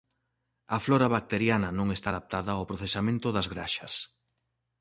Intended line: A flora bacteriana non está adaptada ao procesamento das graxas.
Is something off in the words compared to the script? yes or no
no